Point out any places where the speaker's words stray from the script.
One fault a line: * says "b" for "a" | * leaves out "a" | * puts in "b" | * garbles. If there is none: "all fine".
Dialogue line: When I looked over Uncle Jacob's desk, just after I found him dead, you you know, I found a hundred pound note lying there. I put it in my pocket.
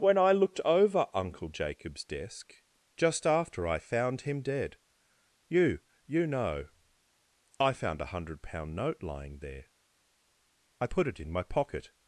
all fine